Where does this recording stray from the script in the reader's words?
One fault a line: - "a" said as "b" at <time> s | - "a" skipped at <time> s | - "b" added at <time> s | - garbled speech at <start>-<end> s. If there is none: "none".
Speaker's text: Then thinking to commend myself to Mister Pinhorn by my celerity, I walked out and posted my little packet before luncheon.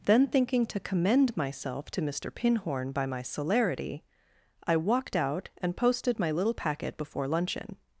none